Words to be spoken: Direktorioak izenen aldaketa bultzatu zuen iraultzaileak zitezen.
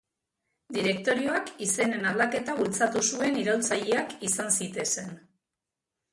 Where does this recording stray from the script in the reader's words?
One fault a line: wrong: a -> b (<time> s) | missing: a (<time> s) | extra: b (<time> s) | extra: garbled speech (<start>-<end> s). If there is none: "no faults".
extra: izan (4.3 s)